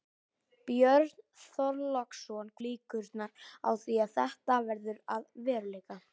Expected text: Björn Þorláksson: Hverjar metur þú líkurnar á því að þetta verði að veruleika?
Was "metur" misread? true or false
true